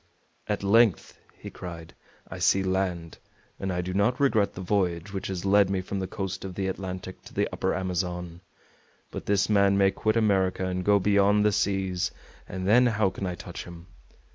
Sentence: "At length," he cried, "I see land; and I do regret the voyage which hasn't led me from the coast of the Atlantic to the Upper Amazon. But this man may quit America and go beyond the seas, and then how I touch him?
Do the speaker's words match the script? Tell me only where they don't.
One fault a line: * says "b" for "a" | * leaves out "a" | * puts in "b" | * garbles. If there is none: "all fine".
* puts in "not"
* says "has" for "hasn't"
* puts in "can"